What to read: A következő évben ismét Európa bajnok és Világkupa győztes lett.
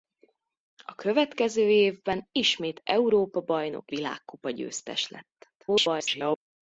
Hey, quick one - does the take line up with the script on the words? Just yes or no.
no